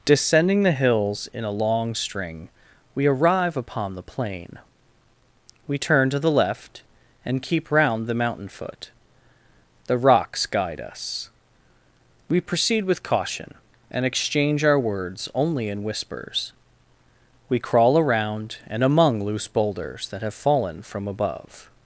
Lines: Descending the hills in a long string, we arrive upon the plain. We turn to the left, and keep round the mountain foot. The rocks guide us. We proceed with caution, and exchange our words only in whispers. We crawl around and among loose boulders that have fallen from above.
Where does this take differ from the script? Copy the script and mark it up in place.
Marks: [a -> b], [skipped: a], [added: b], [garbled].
Descending the hills in a long string, we arrive upon the plain. We turn to the left, and keep round the mountain foot. The rocks guide us. We proceed with caution, and exchange our words only in whispers. We crawl around and among loose boulders that have fallen from above.